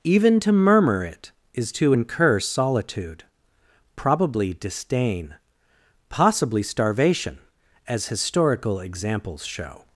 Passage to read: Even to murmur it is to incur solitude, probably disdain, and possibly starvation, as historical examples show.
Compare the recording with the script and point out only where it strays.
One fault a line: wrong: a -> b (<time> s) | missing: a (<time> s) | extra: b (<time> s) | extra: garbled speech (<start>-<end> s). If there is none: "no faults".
missing: and (5.4 s)